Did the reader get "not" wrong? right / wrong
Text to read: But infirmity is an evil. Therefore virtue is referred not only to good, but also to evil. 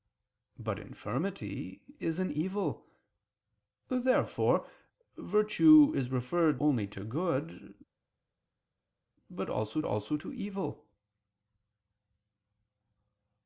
wrong